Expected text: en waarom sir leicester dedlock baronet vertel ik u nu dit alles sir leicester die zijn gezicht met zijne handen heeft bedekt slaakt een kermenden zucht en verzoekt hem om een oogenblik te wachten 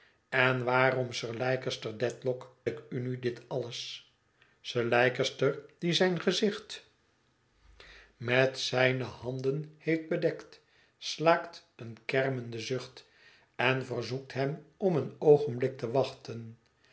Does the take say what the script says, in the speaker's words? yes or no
no